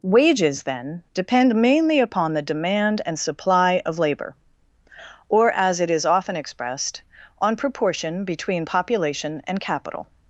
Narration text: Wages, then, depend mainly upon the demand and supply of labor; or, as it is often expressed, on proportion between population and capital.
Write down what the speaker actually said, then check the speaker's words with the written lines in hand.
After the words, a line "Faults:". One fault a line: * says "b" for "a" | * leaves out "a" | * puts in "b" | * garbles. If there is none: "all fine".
Wages, then, depend mainly upon the demand and supply of labor; or, as it is often expressed, on proportion between population and capital.
Faults:
all fine